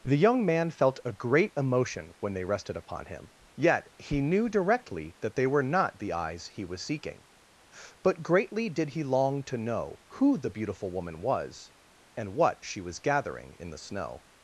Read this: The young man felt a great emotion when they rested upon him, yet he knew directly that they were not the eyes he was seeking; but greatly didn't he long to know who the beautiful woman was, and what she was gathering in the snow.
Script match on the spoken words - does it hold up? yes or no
no